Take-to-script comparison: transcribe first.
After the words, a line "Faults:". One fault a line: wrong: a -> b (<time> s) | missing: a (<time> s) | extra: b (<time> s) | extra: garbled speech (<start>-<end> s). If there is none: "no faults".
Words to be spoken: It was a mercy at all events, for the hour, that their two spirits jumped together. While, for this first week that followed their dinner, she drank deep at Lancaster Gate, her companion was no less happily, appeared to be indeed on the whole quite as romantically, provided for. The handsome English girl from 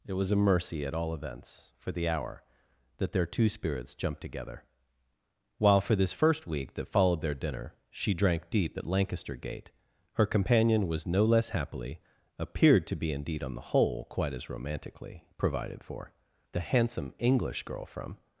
It was a mercy at all events, for the hour, that their two spirits jumped together. While, for this first week that followed their dinner, she drank deep at Lancaster Gate, her companion was no less happily, appeared to be indeed on the whole quite as romantically, provided for. The handsome English girl from
Faults:
no faults